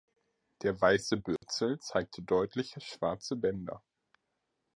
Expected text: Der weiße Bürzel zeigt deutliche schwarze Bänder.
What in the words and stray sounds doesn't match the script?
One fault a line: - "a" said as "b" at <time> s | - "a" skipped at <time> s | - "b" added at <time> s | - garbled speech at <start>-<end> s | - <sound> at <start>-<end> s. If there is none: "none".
- dropout at 1.4-1.4 s